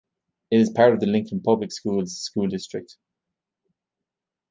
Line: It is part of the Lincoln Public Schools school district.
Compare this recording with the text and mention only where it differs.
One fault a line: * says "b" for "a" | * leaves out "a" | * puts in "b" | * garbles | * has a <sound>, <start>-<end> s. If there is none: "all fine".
all fine